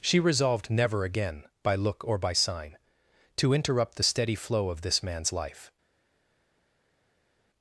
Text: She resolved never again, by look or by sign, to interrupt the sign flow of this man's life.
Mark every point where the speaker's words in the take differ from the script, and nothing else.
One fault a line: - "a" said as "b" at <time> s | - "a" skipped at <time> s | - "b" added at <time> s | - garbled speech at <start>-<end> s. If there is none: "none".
- "sign" said as "steady" at 4.0 s